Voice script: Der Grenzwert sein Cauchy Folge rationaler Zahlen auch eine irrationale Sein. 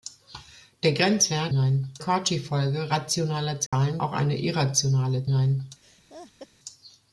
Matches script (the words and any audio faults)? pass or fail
fail